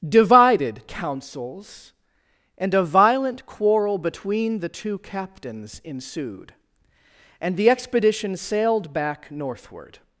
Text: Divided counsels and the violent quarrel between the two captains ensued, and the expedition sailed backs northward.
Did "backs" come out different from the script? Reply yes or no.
yes